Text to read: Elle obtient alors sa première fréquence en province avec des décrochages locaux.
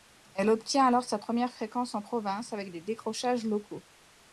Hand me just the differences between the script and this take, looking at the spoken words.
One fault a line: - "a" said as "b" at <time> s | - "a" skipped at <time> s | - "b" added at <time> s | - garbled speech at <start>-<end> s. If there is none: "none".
none